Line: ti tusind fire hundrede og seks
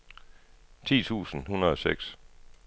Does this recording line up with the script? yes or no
no